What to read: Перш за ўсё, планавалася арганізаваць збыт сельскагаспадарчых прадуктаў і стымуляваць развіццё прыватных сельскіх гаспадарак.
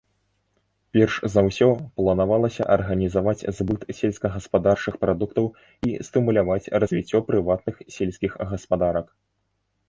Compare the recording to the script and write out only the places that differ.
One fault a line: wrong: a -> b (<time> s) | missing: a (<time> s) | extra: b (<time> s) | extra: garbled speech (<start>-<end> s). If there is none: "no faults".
no faults